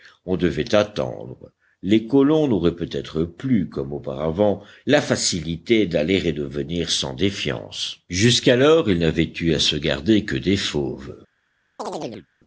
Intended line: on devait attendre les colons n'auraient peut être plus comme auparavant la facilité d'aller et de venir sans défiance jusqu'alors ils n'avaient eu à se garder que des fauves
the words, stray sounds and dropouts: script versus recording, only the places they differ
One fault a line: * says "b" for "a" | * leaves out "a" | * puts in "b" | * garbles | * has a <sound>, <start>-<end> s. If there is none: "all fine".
* has a chirp, 11.8-12.3 s